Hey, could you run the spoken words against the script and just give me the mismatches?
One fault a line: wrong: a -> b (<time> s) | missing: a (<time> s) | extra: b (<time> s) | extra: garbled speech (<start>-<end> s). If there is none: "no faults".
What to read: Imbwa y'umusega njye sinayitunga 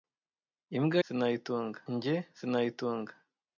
wrong: y'umusega -> sinayitunga (1.0 s)